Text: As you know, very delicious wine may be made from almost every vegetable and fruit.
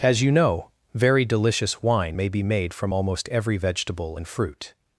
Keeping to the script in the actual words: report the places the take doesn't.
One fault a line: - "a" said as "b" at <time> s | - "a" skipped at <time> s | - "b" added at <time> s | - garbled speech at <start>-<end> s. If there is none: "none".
none